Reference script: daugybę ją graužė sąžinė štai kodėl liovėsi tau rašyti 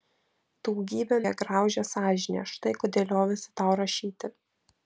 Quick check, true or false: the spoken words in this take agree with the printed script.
true